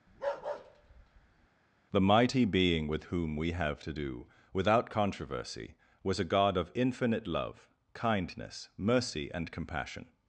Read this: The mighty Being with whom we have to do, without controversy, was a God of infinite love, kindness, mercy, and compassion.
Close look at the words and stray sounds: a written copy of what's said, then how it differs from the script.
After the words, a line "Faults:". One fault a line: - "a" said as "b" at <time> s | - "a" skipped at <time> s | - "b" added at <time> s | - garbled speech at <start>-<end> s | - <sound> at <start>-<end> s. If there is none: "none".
The mighty Being with whom we have to do, without controversy, was a God of infinite love, kindness, mercy, and compassion.
Faults:
- bark at 0.1-1.5 s